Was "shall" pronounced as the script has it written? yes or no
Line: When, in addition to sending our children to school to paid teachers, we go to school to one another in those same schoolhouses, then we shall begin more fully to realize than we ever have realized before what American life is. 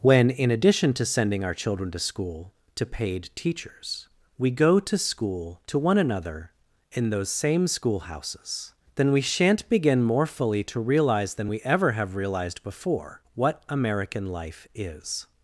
no